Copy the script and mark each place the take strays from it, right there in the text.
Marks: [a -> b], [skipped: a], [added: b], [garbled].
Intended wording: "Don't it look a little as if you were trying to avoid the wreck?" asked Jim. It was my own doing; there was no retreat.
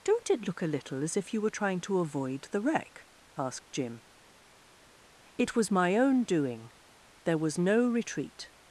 "Don't it look a little as if you were trying to avoid the wreck?" asked Jim. It was my own doing; there was no retreat.